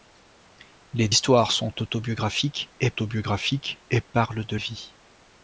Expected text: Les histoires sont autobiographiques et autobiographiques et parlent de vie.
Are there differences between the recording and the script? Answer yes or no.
no